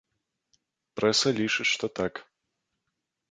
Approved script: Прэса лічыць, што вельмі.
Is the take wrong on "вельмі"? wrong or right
wrong